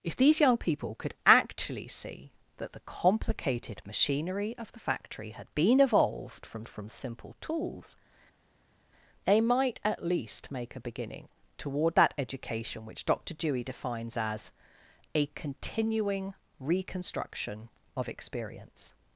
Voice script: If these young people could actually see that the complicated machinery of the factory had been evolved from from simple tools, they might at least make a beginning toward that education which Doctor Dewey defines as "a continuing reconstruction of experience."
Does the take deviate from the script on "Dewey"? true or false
false